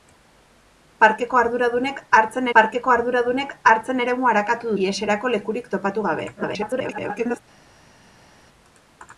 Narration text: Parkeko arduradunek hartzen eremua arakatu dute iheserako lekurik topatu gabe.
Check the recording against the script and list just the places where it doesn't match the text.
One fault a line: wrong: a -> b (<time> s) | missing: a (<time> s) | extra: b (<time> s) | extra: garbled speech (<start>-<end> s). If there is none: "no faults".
extra: parkeko arduradunek hartzen (2.6 s)
missing: dute (4.7 s)
extra: garbled speech (6.4-7.4 s)